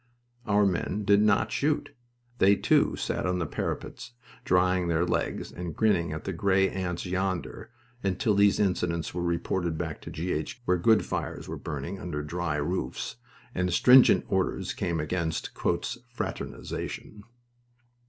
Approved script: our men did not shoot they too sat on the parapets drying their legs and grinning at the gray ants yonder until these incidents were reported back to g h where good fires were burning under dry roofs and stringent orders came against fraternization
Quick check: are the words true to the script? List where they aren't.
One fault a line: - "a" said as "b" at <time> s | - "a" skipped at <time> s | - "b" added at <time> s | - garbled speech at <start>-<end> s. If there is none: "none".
none